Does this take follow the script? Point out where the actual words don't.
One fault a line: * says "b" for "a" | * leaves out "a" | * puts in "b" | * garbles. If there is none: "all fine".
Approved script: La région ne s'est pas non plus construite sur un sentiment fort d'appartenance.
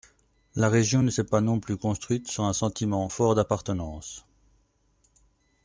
all fine